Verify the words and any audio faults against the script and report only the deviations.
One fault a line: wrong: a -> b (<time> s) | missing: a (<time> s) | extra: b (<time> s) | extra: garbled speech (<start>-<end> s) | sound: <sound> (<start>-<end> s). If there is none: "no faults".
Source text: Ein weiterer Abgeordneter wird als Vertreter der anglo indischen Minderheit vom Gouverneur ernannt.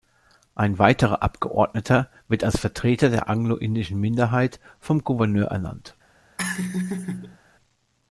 sound: laugh (6.4-7.4 s)